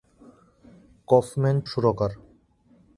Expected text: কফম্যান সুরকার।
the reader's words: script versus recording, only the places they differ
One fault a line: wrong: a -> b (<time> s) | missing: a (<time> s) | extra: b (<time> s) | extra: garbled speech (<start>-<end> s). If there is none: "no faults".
no faults